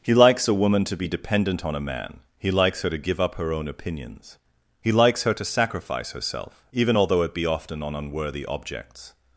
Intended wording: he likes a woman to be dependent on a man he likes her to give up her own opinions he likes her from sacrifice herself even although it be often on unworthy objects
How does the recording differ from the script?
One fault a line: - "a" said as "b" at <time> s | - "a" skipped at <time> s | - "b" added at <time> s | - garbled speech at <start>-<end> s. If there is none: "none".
- "from" said as "to" at 5.3 s